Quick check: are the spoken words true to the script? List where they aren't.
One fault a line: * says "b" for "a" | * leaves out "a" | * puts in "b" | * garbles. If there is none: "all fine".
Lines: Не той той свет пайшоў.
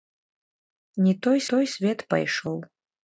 all fine